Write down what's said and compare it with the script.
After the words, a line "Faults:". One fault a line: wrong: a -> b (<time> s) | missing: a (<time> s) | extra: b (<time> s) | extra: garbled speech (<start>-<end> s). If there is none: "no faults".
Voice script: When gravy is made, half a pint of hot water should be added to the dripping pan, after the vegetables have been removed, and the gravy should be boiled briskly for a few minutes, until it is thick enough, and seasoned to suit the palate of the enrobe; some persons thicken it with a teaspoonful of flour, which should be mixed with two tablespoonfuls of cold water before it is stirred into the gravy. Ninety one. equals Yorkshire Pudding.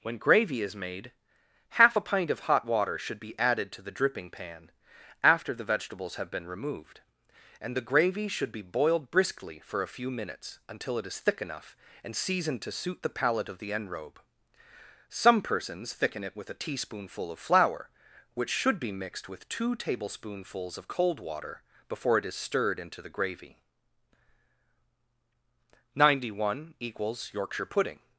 When gravy is made, half a pint of hot water should be added to the dripping pan, after the vegetables have been removed, and the gravy should be boiled briskly for a few minutes, until it is thick enough, and seasoned to suit the palate of the enrobe; some persons thicken it with a teaspoonful of flour, which should be mixed with two tablespoonfuls of cold water before it is stirred into the gravy. Ninety one. equals Yorkshire Pudding.
Faults:
no faults